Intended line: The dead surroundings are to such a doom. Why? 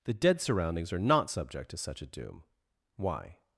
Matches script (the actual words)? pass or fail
fail